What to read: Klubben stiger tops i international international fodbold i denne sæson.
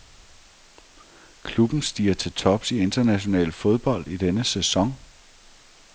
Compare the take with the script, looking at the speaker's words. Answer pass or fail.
fail